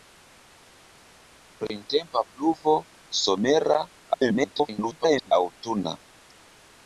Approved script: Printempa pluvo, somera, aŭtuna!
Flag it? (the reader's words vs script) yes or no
yes